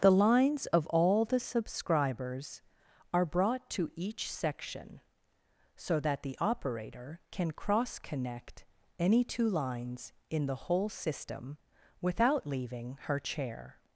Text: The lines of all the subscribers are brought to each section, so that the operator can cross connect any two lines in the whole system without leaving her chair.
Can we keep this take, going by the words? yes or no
yes